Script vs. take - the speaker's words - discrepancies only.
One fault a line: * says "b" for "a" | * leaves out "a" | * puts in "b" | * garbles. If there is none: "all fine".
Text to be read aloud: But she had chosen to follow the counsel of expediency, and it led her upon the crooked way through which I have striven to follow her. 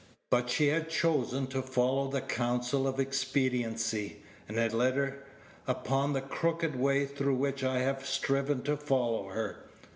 all fine